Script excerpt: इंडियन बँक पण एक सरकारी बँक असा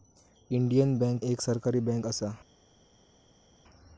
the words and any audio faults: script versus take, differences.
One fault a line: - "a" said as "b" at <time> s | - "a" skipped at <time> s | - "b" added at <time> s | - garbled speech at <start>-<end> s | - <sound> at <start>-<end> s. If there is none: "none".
- "पण" skipped at 1.2 s